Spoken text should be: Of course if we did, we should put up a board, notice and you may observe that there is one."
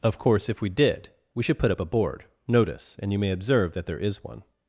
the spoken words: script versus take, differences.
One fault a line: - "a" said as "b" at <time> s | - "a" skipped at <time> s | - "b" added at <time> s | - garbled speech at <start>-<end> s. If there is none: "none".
none